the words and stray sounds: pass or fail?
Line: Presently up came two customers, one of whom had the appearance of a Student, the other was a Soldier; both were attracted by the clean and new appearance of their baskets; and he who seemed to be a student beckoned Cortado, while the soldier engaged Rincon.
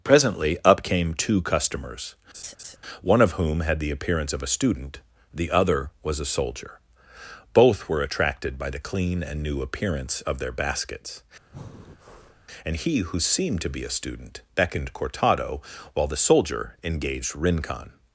fail